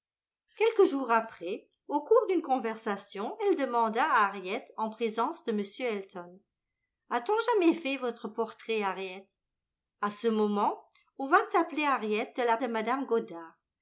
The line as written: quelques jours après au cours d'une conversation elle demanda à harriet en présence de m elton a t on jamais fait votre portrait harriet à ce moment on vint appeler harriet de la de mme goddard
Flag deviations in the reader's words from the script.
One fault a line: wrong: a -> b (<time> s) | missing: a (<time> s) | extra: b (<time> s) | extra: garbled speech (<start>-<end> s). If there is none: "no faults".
no faults